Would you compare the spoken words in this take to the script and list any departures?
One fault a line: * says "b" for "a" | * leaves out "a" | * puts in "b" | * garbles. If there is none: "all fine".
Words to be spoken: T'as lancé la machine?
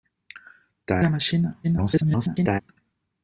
* leaves out "lancé"
* garbles